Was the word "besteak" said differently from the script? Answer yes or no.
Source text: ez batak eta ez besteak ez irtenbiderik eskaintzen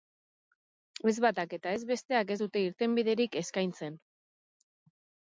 no